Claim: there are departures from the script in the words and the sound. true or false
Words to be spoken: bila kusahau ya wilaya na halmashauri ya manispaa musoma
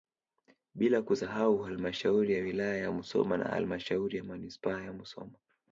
true